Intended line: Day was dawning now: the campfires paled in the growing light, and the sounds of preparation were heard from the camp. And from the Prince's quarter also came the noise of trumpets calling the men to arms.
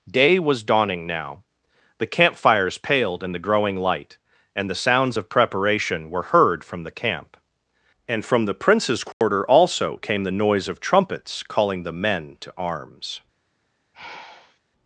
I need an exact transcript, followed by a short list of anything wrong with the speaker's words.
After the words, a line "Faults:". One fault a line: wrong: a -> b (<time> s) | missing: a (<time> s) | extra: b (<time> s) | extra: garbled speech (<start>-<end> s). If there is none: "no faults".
Day was dawning now: the campfires paled in the growing light, and the sounds of preparation were heard from the camp. And from the Prince's quarter also came the noise of trumpets calling the men to arms.
Faults:
no faults